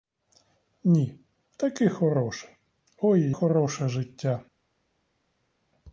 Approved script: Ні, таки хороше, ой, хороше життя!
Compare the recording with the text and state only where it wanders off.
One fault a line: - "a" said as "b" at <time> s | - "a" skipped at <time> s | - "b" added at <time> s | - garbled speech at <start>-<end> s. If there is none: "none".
none